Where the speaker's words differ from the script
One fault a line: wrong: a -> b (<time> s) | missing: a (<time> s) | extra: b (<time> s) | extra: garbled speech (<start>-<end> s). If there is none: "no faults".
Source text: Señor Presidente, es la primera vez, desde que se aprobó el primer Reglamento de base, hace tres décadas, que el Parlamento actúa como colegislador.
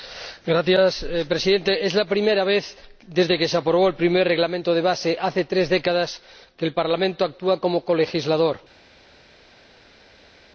no faults